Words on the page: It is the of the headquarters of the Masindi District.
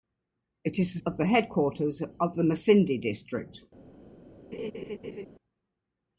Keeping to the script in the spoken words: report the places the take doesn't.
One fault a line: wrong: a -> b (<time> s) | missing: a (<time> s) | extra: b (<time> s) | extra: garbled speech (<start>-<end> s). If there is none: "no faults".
no faults